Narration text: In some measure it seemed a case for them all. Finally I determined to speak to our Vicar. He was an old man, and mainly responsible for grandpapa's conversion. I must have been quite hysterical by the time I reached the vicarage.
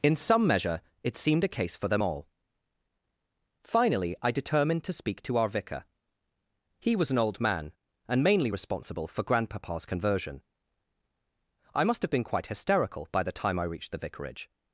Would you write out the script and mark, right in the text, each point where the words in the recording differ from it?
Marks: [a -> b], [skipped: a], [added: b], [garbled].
In some measure it seemed a case for them all. Finally I determined to speak to our Vicar. He was an old man, and mainly responsible for grandpapa's conversion. I must have been quite hysterical by the time I reached the vicarage.